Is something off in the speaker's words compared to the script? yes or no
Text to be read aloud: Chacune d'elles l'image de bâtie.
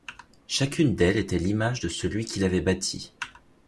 yes